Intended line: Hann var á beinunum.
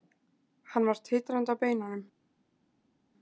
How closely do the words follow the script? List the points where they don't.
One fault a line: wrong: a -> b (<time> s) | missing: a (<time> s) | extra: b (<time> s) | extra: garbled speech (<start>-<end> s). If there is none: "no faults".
extra: titrandi (1.1 s)